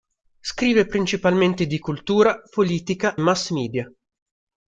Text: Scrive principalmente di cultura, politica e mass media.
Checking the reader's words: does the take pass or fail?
fail